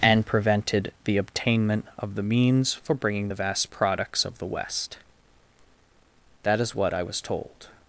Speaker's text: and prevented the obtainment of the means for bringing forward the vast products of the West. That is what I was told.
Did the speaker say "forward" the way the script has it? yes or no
no